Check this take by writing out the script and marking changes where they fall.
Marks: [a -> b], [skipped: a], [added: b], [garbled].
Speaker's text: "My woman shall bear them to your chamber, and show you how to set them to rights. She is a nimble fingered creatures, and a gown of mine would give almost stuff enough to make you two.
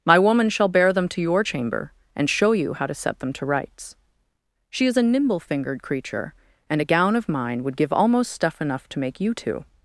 "My woman shall bear them to your chamber, and show you how to set them to rights. She is a nimble fingered [creatures, -> creature] and a gown of mine would give almost stuff enough to make you two.